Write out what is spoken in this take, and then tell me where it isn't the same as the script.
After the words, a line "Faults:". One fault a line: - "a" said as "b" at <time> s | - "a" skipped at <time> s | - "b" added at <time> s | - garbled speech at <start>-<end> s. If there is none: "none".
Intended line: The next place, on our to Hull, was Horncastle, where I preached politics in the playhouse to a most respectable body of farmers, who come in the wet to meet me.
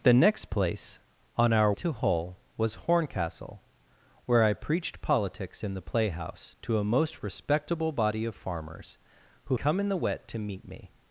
The next place, on our to Hull, was Horncastle, where I preached politics in the playhouse to a most respectable body of farmers, who come in the wet to meet me.
Faults:
none